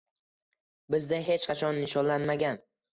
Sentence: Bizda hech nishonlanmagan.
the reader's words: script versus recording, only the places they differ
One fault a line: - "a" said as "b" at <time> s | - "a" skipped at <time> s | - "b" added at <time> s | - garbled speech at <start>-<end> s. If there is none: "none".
- "qachon" added at 1.5 s